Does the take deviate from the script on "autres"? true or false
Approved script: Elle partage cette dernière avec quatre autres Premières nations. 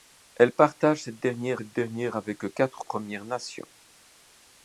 true